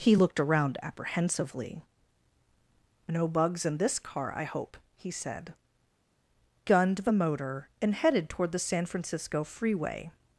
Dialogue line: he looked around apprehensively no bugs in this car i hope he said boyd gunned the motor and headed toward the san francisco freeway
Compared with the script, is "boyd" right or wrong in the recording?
wrong